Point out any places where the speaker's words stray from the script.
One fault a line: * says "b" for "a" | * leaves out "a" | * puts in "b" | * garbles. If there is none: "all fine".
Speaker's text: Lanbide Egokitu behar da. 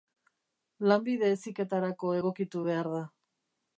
* puts in "Heziketarako"